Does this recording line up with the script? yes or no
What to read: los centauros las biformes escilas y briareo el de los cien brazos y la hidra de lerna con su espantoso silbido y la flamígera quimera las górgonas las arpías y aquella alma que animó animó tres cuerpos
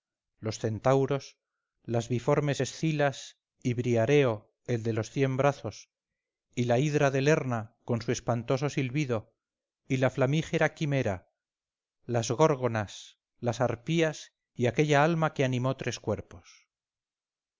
no